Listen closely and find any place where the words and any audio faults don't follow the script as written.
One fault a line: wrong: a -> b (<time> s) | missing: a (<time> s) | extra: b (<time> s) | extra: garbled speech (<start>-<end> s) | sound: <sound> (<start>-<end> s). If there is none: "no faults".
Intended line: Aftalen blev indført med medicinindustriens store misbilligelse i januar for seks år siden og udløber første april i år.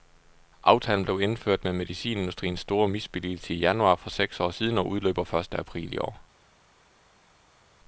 no faults